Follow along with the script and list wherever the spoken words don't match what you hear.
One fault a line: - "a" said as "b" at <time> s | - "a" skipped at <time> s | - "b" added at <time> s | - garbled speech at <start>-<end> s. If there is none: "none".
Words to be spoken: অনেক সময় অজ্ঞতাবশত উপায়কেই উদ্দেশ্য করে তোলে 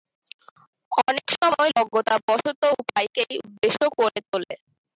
none